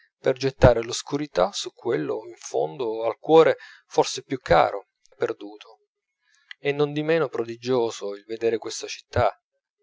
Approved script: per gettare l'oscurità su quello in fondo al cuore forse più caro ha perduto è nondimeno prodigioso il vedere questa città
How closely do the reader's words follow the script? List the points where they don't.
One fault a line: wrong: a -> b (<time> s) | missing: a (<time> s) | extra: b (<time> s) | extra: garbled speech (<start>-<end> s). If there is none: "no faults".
no faults